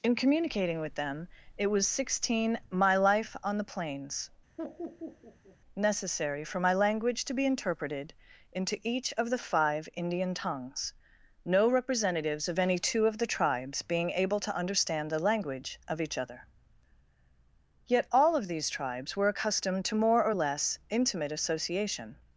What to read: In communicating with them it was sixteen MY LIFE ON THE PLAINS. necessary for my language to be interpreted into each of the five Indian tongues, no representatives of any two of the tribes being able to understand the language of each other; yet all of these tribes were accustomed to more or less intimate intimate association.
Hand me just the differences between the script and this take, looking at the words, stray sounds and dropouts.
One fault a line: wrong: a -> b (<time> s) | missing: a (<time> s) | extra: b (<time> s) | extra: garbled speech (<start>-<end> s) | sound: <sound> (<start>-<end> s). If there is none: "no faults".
sound: laugh (4.6-5.6 s)
missing: intimate (21.3 s)